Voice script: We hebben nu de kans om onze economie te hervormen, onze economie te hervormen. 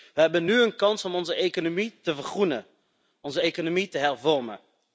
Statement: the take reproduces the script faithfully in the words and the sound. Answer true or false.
false